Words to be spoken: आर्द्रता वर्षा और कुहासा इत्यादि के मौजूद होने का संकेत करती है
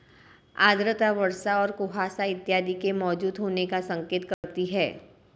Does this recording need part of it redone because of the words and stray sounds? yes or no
yes